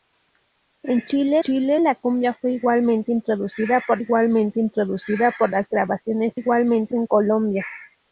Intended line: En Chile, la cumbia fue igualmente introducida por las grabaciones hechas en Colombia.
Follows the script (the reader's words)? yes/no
no